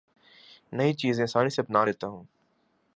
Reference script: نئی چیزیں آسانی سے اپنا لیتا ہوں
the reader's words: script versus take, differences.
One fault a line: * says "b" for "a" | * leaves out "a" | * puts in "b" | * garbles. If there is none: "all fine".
all fine